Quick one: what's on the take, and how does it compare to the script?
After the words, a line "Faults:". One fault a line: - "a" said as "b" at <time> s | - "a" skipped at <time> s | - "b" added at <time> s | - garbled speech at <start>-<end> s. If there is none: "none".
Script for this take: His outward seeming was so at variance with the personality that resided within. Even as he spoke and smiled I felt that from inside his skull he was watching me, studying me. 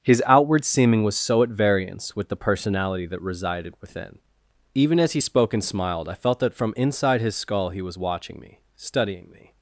His outward seeming was so at variance with the personality that resided within. Even as he spoke and smiled I felt that from inside his skull he was watching me, studying me.
Faults:
none